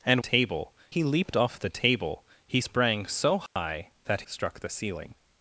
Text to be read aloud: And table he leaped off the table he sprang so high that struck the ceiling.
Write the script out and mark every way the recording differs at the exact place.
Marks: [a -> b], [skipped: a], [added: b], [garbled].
And table he leaped off the table he sprang so high that struck the ceiling.